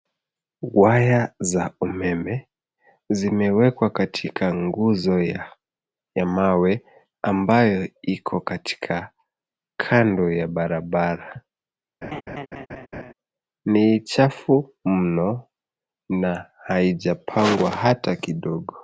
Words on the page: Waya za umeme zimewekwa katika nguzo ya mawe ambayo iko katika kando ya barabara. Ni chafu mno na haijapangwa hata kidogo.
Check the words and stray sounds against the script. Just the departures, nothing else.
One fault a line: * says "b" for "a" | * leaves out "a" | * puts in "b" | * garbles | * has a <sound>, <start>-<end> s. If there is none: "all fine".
* has a laugh, 12.0-13.1 s